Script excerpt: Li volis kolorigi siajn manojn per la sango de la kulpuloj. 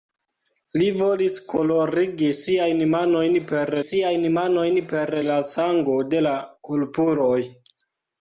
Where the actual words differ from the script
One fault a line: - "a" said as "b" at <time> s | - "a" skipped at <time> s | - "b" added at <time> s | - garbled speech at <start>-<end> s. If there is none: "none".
- "siajn manojn per" added at 3.8 s